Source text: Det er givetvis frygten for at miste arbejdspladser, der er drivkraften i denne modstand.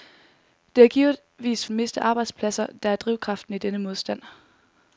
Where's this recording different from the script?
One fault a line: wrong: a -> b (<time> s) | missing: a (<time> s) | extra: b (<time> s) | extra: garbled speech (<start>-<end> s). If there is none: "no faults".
missing: frygten for at (1.7 s)